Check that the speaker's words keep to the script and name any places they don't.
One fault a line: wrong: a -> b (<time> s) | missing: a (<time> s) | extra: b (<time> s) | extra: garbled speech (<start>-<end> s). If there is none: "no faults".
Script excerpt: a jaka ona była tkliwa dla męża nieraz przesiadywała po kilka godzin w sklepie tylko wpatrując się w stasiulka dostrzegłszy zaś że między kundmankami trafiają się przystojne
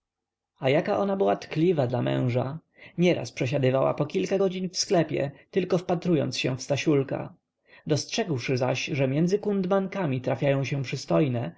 no faults